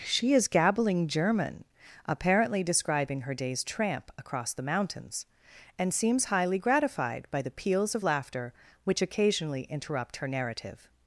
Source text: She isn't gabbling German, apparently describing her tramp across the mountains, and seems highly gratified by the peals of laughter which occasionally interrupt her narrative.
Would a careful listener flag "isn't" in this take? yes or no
yes